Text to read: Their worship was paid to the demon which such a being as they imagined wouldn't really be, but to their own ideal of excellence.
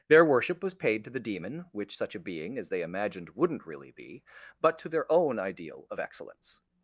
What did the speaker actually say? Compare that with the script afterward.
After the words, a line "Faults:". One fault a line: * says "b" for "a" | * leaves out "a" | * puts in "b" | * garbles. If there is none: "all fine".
Their worship was paid to the demon which such a being as they imagined wouldn't really be, but to their own ideal of excellence.
Faults:
all fine